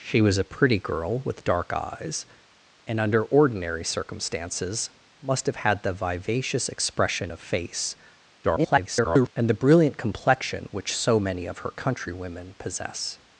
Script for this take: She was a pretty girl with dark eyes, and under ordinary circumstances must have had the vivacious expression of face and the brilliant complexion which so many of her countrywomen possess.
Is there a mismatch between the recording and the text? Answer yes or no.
yes